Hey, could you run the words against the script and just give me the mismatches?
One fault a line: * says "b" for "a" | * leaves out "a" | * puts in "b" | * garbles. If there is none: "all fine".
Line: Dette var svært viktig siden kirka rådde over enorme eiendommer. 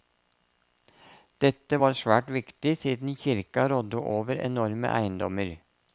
all fine